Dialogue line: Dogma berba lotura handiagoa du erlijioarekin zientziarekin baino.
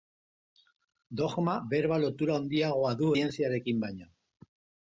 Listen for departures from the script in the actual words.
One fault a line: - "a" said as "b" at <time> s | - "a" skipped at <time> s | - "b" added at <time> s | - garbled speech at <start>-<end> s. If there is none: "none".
- "erlijioarekin" skipped at 3.1 s